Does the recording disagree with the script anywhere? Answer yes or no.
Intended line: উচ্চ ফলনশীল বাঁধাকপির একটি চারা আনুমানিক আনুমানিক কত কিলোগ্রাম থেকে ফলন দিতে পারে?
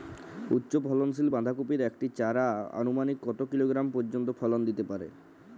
yes